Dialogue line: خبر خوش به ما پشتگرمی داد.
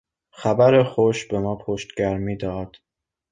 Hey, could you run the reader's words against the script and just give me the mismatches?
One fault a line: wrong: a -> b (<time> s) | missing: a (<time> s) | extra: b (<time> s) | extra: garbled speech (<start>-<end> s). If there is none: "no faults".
no faults